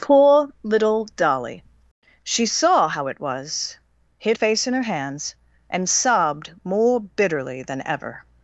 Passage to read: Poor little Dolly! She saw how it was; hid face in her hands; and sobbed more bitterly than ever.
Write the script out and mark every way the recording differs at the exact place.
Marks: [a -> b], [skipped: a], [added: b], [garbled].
Poor little Dolly! She saw how it was; hid face in her hands; and sobbed more bitterly than ever.